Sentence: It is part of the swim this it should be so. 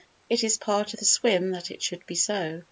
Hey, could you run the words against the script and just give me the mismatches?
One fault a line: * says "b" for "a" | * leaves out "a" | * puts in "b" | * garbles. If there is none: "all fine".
* says "that" for "this"